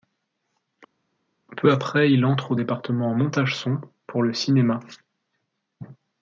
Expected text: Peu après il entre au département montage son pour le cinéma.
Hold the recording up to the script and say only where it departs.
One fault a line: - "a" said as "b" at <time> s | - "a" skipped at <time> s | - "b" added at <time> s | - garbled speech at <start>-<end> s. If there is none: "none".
none